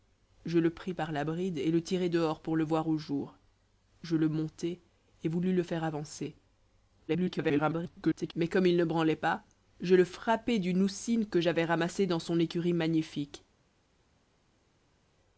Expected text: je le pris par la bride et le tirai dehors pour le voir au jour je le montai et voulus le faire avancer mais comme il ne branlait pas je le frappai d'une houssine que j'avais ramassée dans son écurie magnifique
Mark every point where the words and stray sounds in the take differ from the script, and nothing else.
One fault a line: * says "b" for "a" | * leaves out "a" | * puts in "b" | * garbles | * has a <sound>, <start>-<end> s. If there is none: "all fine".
* garbles